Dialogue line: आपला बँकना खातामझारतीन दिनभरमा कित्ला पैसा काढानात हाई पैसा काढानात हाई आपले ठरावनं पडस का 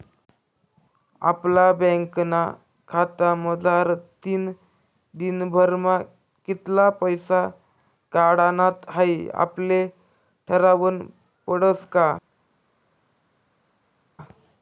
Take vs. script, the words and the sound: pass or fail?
fail